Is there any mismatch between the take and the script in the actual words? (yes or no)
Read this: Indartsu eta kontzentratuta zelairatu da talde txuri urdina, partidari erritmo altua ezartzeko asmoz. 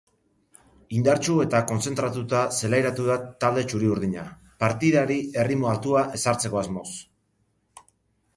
no